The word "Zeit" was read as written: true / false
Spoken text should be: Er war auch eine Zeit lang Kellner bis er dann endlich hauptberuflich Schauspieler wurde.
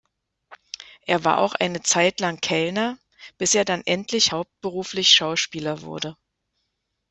true